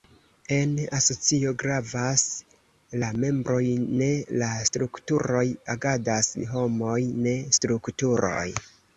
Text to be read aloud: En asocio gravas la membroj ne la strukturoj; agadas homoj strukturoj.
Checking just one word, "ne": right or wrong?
right